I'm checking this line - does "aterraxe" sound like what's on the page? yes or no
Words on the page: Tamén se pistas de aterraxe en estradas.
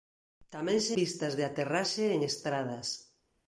yes